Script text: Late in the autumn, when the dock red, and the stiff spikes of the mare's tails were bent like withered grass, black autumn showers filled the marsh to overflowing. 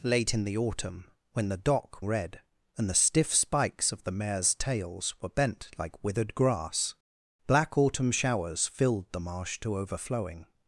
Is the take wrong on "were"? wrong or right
right